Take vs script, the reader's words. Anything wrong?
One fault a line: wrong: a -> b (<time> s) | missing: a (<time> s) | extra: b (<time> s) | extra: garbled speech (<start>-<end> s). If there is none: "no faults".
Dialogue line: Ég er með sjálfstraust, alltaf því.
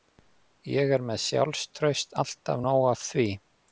extra: nóg af (2.7 s)